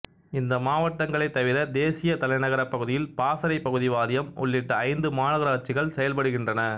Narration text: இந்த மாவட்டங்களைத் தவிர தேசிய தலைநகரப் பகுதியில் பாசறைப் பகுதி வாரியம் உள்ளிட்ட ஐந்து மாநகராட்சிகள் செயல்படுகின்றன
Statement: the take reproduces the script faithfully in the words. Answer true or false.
true